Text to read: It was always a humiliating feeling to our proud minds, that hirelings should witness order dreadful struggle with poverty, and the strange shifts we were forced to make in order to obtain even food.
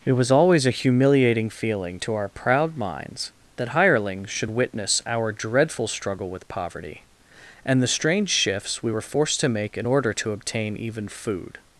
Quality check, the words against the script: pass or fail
fail